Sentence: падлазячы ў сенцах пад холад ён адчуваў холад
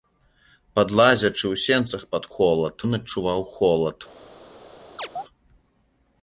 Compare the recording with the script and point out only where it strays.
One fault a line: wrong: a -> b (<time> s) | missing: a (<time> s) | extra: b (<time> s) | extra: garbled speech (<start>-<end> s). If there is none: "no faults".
no faults